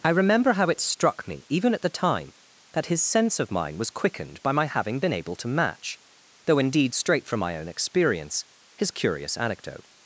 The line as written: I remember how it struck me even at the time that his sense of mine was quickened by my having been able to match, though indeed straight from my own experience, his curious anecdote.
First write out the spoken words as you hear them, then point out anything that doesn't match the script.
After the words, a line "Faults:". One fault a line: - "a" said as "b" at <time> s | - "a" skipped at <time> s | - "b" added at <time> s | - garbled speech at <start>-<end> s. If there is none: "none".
I remember how it struck me even at the time that his sense of mine was quickened by my having been able to match, though indeed straight from my own experience, his curious anecdote.
Faults:
none